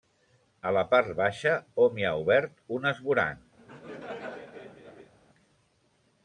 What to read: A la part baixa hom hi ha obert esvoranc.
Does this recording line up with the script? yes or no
no